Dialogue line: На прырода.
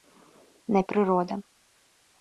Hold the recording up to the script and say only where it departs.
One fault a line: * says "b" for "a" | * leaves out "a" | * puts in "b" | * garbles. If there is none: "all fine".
all fine